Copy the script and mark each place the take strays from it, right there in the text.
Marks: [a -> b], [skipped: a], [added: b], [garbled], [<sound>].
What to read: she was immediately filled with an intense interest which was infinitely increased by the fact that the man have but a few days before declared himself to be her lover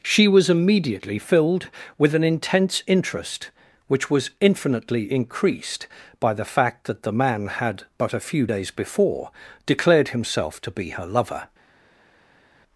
she was immediately filled with an intense interest which was infinitely increased by the fact that the man [have -> had] but a few days before declared himself to be her lover